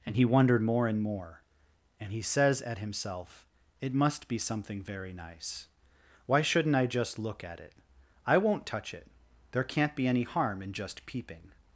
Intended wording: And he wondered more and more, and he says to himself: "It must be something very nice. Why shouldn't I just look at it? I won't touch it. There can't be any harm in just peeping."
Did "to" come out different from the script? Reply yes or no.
yes